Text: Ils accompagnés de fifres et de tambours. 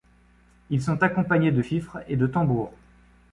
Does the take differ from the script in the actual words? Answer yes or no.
yes